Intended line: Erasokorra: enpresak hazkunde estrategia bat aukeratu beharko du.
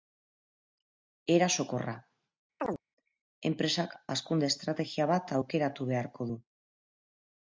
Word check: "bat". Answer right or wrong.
right